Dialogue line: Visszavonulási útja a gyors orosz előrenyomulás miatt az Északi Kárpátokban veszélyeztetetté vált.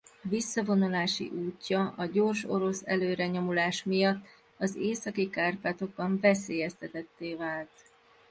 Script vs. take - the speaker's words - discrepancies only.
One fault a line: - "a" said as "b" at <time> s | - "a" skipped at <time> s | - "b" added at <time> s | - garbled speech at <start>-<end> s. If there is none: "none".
none